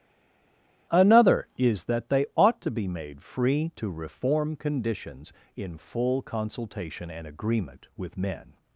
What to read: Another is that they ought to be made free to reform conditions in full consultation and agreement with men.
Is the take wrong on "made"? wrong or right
right